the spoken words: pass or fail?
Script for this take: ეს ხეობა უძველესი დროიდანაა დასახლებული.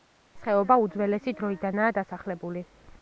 pass